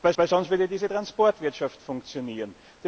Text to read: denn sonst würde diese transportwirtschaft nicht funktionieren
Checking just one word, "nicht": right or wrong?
wrong